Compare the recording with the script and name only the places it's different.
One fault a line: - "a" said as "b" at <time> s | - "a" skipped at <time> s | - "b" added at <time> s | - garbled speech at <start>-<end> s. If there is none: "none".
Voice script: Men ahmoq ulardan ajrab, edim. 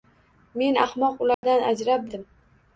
none